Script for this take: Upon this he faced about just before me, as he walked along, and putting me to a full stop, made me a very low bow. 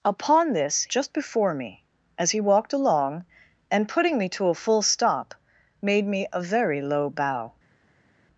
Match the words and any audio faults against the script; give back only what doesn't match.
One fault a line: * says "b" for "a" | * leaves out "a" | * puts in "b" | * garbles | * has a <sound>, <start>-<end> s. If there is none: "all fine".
* leaves out "he faced about"